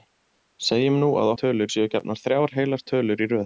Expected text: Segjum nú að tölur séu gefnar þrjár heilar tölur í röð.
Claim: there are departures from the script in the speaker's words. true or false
false